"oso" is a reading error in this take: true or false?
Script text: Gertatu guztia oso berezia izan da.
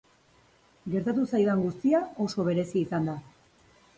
false